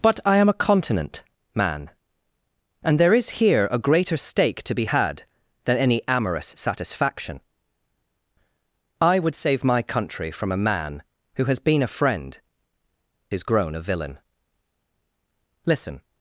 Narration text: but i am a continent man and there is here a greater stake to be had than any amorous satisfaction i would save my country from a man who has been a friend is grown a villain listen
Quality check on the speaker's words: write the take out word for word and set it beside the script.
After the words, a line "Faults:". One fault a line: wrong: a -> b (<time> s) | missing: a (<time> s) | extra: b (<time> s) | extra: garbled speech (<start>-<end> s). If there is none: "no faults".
but i am a continent man and there is here a greater stake to be had than any amorous satisfaction i would save my country from a man who has been a friend is grown a villain listen
Faults:
no faults